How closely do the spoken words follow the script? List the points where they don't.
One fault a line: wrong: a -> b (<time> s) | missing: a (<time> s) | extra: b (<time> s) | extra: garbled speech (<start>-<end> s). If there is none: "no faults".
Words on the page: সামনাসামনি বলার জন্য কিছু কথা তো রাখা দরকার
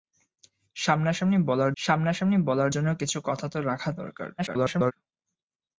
extra: সামনাসামনি বলার (1.8 s)
extra: garbled speech (4.4-4.9 s)